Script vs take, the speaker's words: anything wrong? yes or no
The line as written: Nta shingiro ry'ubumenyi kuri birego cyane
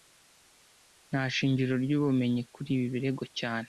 yes